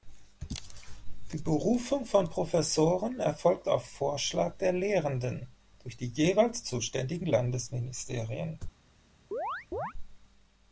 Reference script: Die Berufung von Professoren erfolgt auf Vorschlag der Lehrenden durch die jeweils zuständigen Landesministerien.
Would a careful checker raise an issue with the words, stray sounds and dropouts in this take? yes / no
yes